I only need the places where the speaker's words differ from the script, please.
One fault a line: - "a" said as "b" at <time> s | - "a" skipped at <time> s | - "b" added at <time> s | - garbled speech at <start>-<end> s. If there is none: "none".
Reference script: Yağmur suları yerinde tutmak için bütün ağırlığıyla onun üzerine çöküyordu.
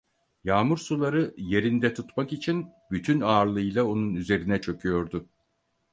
none